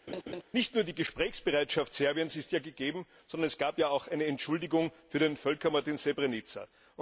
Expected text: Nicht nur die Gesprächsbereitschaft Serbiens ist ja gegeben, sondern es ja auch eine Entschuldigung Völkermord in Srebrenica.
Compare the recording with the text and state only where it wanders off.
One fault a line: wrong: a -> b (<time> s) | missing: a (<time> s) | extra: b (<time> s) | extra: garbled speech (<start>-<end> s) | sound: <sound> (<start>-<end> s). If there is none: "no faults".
sound: laugh (0.1-0.4 s)
extra: gab (3.6 s)
extra: für den (5.1 s)